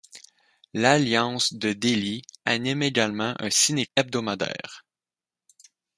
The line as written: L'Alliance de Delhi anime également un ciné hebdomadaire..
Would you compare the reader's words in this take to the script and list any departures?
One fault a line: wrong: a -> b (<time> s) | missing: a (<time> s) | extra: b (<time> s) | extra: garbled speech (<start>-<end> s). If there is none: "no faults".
no faults